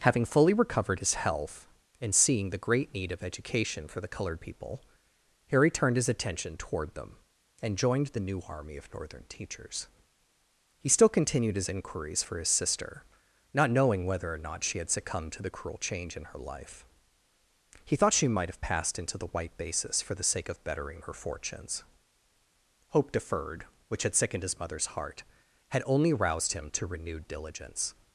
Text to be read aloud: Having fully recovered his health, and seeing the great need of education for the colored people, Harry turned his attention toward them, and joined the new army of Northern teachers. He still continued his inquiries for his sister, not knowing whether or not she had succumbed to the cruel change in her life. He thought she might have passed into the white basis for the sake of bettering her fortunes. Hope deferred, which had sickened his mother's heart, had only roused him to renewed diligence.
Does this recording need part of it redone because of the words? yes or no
no